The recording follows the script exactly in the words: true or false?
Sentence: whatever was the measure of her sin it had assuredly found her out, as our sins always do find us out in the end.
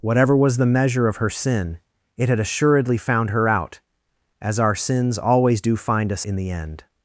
false